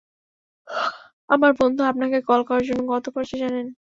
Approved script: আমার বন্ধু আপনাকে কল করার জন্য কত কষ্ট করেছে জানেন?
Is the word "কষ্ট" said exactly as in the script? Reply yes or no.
no